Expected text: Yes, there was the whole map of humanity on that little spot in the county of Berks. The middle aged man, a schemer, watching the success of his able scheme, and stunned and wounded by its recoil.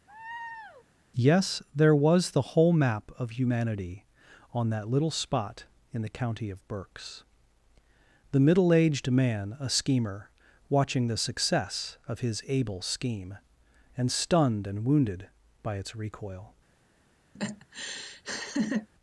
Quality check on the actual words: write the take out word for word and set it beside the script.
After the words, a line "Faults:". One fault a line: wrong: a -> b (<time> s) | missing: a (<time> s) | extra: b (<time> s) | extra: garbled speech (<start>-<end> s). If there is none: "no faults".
Yes, there was the whole map of humanity on that little spot in the county of Berks. The middle aged man, a schemer, watching the success of his able scheme, and stunned and wounded by its recoil.
Faults:
no faults